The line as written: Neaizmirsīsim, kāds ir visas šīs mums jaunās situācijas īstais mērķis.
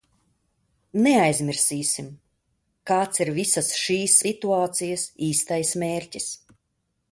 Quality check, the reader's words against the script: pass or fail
fail